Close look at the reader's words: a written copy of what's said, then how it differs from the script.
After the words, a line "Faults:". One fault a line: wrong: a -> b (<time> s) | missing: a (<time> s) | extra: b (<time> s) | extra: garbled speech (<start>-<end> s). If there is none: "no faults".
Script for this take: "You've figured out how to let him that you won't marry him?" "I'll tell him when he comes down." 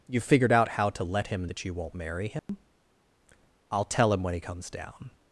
"You've figured out how to let him that you won't marry him?" "I'll tell him when he comes down."
Faults:
no faults